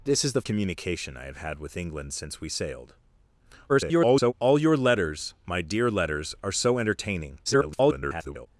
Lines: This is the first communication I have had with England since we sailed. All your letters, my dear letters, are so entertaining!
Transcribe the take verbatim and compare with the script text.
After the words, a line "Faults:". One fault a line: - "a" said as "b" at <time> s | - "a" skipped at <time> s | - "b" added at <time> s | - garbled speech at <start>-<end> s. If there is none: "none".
This is the communication I have had with England since we sailed. [garbled] All your letters, my dear letters, are so entertaining! [garbled]
Faults:
- "first" skipped at 0.4 s
- garbled speech at 3.7-4.3 s
- garbled speech at 7.5-8.5 s